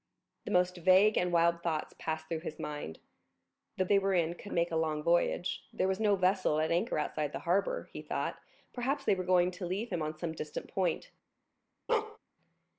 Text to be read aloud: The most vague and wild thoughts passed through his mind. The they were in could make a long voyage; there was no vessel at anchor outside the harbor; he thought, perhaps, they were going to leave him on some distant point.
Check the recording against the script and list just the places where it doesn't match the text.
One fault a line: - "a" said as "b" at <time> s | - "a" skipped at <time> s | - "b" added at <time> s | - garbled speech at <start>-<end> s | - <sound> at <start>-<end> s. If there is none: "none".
- bark at 11.9-12.2 s